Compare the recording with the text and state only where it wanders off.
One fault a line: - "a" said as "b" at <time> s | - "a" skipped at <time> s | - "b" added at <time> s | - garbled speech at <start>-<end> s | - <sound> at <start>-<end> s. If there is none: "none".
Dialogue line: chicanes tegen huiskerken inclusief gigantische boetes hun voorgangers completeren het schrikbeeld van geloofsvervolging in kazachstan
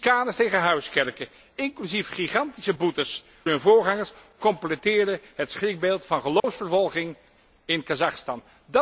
- dropout at 6.4-6.4 s